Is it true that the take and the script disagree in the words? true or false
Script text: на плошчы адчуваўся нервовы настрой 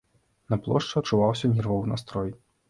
false